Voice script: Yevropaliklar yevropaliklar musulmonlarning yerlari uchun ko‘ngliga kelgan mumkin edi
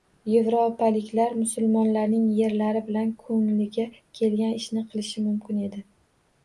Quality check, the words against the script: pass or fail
fail